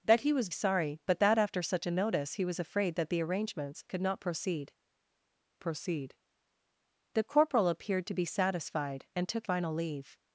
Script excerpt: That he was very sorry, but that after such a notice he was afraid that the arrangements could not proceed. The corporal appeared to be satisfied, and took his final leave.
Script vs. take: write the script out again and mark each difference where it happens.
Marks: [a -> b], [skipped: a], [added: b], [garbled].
That he was [skipped: very] sorry, but that after such a notice he was afraid that the arrangements could not proceed. [added: proceed] The corporal appeared to be satisfied, and took [skipped: his] final leave.